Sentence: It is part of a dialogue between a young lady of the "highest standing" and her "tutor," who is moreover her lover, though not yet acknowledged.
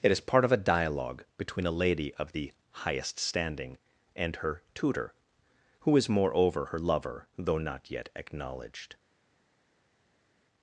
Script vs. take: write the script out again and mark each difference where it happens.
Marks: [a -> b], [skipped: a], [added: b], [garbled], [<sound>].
It is part of a dialogue between a [skipped: young] lady of the "highest standing" and her "tutor," who is moreover her lover, though not yet acknowledged.